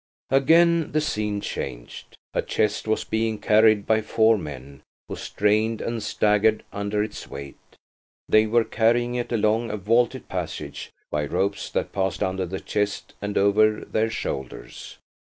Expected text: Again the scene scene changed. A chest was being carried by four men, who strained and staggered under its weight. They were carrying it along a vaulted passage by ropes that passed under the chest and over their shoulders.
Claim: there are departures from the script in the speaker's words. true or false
true